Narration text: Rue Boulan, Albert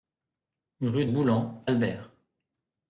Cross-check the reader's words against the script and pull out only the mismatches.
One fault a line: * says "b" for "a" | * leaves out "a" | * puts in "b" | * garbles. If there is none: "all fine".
all fine